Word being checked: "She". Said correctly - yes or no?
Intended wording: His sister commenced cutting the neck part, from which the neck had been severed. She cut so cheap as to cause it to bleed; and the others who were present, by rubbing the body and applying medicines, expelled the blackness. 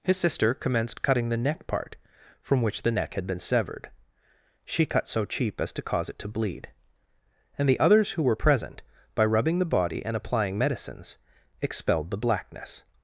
yes